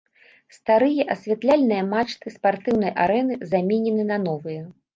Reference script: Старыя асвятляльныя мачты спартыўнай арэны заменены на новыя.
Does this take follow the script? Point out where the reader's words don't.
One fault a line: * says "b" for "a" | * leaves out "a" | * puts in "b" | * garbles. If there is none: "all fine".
all fine